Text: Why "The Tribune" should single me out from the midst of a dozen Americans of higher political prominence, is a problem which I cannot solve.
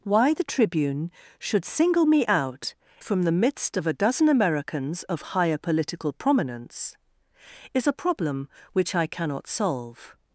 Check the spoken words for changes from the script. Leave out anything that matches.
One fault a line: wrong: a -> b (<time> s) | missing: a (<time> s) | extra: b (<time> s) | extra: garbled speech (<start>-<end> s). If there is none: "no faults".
no faults